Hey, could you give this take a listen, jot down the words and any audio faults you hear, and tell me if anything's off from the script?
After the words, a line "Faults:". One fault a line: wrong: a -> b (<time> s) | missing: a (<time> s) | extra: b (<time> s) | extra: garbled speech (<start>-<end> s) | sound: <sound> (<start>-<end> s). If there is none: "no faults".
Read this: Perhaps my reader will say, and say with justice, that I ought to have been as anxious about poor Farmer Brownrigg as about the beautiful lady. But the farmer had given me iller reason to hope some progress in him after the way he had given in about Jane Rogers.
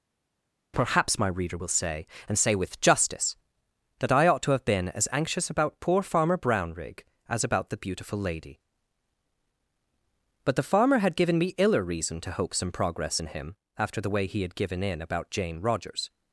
Perhaps my reader will say, and say with justice, that I ought to have been as anxious about poor Farmer Brownrigg as about the beautiful lady. But the farmer had given me iller reason to hope some progress in him after the way he had given in about Jane Rogers.
Faults:
no faults